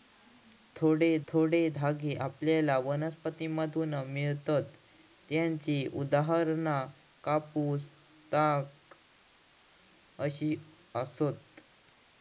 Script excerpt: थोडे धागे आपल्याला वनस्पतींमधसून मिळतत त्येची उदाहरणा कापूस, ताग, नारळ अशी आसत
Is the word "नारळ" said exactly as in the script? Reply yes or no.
no